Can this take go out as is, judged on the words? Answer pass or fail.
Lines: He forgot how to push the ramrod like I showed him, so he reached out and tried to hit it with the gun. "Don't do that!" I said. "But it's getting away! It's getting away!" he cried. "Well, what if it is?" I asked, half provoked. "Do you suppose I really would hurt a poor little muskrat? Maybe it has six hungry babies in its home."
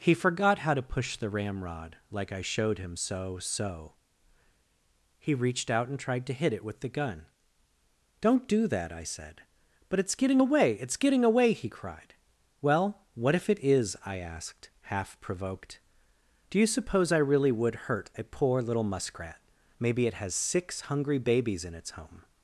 fail